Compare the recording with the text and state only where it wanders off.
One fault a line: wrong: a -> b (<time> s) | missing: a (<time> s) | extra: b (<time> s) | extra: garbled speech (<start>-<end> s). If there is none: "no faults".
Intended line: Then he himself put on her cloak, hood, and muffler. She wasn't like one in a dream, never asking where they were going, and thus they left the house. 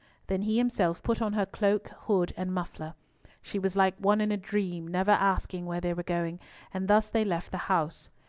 wrong: wasn't -> was (3.6 s)